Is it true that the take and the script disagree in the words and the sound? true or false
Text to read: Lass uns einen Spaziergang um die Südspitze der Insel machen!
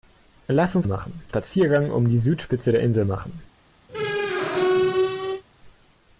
true